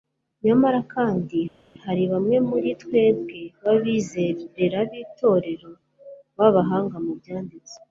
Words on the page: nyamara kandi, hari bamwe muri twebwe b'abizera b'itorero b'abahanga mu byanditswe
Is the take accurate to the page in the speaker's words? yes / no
yes